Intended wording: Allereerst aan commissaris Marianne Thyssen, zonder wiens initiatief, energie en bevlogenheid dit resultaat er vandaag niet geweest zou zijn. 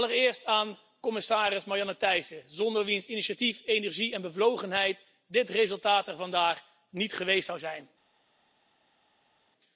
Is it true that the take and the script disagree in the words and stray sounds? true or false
false